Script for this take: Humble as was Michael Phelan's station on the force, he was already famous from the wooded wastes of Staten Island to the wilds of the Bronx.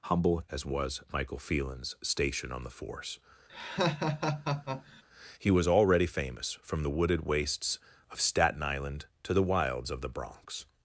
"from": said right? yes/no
yes